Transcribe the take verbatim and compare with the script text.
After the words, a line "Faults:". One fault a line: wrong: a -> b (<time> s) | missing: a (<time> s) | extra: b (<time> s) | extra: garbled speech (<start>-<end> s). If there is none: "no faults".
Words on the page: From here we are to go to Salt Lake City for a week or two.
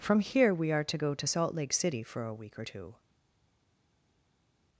From here we are to go to Salt Lake City for a week or two.
Faults:
no faults